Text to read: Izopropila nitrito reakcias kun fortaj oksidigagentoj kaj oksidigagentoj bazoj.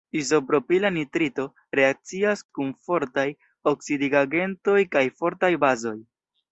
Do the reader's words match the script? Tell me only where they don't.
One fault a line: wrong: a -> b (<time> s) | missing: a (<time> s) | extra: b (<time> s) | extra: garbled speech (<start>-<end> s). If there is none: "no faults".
wrong: oksidigagentoj -> fortaj (5.2 s)